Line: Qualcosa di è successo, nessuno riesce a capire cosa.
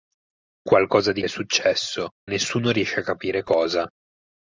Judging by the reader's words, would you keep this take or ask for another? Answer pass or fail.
pass